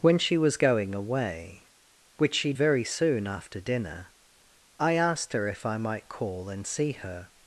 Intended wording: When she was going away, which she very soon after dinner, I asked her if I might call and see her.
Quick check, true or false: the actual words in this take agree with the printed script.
true